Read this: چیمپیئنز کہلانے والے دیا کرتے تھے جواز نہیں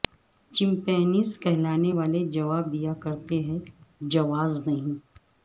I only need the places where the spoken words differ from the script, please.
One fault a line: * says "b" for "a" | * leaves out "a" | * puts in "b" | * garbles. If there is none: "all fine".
* puts in "جواب"
* says "ہیں" for "تھے"